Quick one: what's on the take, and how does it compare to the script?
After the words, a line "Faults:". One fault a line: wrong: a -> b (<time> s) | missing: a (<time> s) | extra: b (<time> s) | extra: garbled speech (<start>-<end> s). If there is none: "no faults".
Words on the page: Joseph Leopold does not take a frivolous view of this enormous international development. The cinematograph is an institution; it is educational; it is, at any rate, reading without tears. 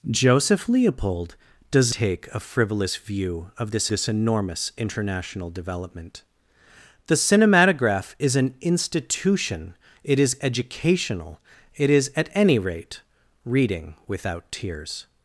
Joseph Leopold does take a frivolous view of this this enormous international development. The cinematograph is an institution; it is educational; it is, at any rate, reading without tears.
Faults:
missing: not (1.9 s)
extra: this (3.9 s)